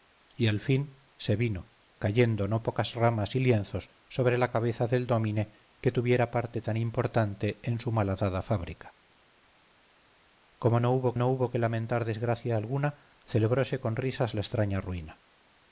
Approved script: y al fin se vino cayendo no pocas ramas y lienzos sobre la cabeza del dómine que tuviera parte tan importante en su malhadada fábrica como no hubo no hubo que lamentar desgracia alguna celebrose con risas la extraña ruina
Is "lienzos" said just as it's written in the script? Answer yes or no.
yes